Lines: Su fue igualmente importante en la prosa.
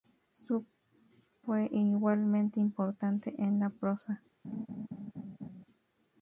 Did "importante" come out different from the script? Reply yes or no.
no